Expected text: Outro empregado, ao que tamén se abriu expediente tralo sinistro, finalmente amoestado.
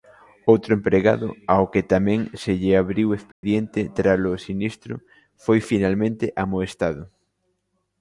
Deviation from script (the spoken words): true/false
true